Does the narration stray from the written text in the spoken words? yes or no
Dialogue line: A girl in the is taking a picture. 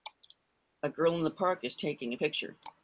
yes